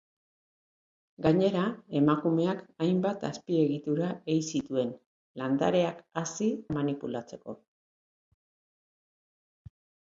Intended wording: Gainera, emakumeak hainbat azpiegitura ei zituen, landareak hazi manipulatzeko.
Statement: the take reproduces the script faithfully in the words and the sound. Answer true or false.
true